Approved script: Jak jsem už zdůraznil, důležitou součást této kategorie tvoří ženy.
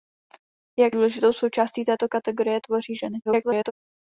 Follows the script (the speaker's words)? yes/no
no